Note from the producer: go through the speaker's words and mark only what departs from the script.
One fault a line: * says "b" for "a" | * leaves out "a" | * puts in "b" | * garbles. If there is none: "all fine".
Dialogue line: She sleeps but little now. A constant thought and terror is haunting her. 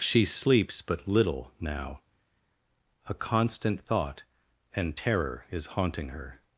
all fine